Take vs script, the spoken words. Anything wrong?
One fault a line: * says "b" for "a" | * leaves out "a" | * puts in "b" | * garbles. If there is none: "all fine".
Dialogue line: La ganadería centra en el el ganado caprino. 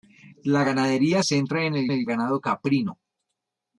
all fine